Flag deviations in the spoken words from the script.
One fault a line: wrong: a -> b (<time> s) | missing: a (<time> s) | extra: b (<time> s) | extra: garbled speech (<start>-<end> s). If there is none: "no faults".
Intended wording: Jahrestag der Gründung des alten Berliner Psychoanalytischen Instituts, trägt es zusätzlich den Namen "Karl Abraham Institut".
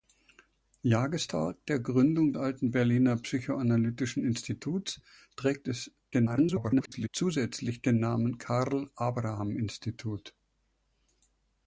missing: des (2.3 s)
extra: garbled speech (6.1-7.1 s)